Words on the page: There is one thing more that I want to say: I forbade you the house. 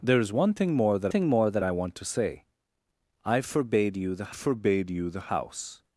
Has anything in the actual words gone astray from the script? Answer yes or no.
yes